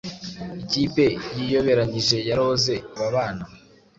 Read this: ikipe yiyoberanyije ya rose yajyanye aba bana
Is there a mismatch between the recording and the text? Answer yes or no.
yes